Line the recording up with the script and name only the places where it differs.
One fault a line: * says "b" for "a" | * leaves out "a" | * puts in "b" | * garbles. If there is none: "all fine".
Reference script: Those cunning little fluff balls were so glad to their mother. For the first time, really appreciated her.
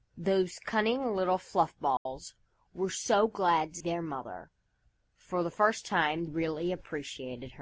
all fine